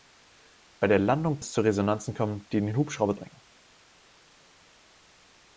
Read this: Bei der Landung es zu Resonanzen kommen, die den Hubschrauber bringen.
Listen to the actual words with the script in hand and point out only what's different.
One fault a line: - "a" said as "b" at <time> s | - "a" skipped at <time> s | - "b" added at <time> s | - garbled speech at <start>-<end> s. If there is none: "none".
none